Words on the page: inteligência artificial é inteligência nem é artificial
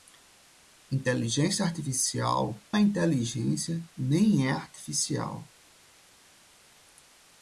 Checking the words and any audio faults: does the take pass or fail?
pass